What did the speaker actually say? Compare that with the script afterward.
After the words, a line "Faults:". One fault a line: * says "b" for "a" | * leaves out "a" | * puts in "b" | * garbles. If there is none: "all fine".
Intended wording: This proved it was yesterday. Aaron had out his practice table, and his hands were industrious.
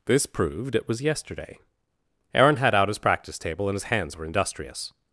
This proved it was yesterday. Aaron had out his practice table, and his hands were industrious.
Faults:
all fine